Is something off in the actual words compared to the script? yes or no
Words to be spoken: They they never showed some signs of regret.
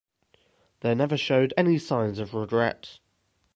yes